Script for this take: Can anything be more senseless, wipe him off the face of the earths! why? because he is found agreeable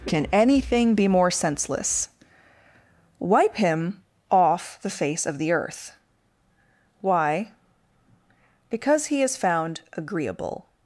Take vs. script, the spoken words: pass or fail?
fail